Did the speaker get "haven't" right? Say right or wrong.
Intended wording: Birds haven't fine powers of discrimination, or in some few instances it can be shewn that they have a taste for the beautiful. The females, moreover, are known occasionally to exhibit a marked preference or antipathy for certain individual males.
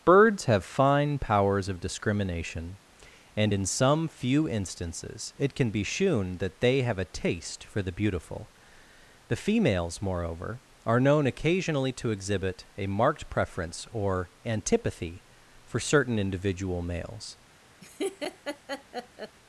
wrong